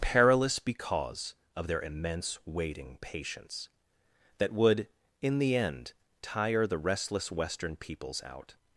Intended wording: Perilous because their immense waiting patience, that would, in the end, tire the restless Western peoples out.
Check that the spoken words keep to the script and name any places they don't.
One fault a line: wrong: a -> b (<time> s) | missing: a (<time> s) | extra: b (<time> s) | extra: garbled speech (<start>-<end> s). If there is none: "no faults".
extra: of (1.6 s)